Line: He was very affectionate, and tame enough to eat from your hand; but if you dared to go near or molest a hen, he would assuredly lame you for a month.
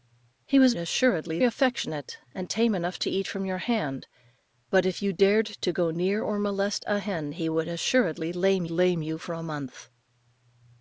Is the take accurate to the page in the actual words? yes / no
no